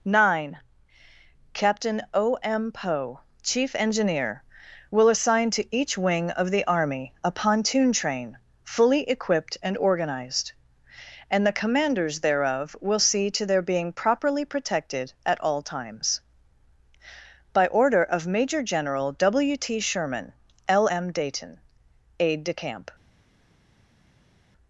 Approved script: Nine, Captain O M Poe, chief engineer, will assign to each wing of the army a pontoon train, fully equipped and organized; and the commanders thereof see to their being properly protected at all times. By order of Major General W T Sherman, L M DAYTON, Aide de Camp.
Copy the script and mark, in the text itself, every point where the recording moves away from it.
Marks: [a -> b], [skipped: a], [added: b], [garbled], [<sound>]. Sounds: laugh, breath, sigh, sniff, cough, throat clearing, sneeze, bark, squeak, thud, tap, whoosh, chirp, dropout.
Nine, Captain O M Poe, chief engineer, will assign to each wing of the army a pontoon train, fully equipped and organized; and the commanders thereof [added: will] see to their being properly protected at all times. By order of Major General W T Sherman, L M DAYTON, Aide de Camp.